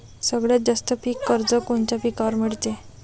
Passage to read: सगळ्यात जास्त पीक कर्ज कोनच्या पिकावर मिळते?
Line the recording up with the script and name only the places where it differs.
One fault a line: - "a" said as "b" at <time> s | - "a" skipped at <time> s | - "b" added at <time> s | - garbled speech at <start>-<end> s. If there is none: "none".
none